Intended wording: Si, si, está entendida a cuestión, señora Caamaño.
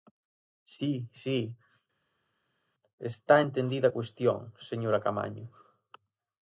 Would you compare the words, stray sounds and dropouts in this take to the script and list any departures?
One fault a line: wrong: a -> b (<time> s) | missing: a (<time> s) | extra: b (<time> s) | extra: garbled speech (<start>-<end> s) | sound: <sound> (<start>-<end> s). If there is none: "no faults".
no faults